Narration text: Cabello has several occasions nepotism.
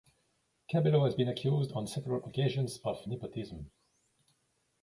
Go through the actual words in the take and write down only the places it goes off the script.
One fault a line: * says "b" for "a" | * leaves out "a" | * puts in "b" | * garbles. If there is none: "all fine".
* puts in "been accused on"
* puts in "of"